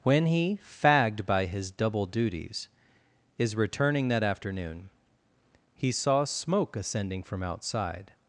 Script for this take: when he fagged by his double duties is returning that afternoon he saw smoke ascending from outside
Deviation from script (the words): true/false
false